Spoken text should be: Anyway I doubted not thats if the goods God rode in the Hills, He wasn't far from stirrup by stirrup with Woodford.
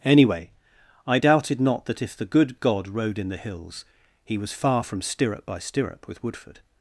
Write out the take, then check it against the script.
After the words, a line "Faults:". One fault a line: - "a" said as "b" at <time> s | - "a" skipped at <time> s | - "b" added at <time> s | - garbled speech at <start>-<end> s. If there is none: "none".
Anyway I doubted not that if the good God rode in the Hills, He was far from stirrup by stirrup with Woodford.
Faults:
- "thats" said as "that" at 1.8 s
- "goods" said as "good" at 2.2 s
- "wasn't" said as "was" at 4.4 s